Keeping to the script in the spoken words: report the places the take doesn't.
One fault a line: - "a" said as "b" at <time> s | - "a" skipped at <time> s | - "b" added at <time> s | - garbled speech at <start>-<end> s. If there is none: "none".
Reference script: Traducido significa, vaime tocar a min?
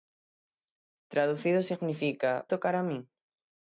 - "vaime" skipped at 2.5 s